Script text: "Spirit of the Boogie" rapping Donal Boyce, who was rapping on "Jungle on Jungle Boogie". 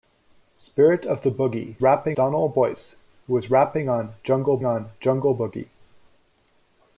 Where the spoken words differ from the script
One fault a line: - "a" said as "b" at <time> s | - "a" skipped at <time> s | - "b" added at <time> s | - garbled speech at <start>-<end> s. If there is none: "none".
none